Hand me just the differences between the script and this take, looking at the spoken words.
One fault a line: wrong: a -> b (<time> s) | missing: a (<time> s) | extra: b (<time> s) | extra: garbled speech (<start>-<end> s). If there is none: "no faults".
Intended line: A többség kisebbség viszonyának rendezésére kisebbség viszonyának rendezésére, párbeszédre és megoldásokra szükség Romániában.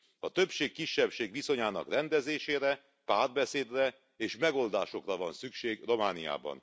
missing: kisebbség viszonyának rendezésére (2.9 s)
extra: van (5.2 s)